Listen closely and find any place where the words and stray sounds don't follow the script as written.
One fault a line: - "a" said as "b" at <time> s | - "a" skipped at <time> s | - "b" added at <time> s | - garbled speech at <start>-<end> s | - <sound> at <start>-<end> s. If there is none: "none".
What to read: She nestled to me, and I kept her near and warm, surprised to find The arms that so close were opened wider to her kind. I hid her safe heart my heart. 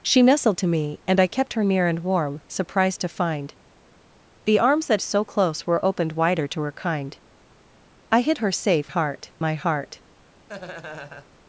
- laugh at 10.5-11.3 s